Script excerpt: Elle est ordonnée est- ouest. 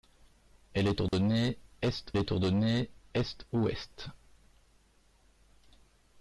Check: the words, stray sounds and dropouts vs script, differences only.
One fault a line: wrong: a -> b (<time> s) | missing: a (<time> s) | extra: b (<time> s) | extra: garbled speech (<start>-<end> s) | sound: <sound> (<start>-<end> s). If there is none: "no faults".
sound: dropout (1.1-1.1 s)
extra: est ordonnée est (2.2 s)